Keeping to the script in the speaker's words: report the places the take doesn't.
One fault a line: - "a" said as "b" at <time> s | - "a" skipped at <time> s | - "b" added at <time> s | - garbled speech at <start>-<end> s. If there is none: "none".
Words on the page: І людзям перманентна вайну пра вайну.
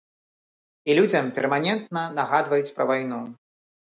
- "вайну" said as "нагадваюць" at 2.2 s